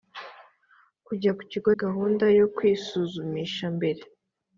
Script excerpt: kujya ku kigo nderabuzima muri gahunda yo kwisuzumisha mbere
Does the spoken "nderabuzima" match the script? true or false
false